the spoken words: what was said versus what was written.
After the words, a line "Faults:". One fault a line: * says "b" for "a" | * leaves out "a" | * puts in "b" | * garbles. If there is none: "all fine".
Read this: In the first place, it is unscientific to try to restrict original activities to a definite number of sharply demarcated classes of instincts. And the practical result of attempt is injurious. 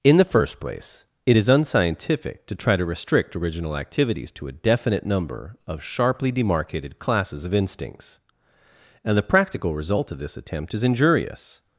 In the first place, it is unscientific to try to restrict original activities to a definite number of sharply demarcated classes of instincts. And the practical result of this attempt is injurious.
Faults:
* puts in "this"